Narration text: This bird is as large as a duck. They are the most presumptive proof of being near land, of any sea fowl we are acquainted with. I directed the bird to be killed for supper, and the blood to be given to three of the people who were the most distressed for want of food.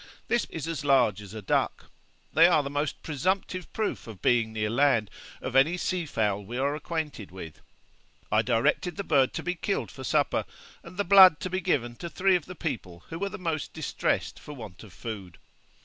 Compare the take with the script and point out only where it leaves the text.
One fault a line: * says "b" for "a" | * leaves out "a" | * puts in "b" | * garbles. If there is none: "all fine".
* leaves out "bird"